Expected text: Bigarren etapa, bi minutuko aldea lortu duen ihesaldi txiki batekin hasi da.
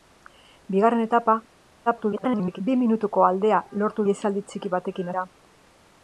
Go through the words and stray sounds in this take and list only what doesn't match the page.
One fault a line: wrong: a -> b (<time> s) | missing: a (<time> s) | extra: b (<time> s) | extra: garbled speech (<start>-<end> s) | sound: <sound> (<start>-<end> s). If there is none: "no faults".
extra: garbled speech (1.9-2.6 s)
missing: duen (4.1 s)
missing: hasi (5.1 s)